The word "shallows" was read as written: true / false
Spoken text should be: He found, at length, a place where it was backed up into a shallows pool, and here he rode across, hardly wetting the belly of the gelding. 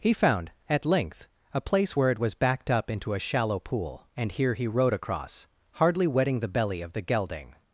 false